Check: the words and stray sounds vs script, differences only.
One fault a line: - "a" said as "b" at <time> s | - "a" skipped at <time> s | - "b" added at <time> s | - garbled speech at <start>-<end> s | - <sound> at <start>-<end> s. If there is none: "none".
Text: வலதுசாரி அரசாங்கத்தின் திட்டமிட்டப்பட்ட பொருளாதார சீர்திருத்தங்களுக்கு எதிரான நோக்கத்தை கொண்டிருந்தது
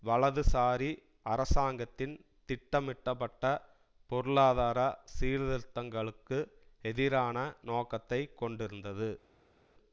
none